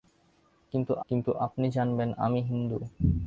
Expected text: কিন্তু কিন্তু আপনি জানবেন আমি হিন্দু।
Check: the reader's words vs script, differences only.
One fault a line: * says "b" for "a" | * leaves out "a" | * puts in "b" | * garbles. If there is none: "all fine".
all fine